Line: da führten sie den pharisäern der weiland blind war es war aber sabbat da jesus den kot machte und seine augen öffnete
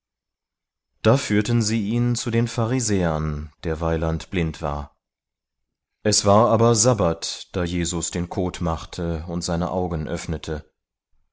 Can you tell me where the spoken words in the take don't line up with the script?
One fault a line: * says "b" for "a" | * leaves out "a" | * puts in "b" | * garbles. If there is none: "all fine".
* puts in "ihn zu"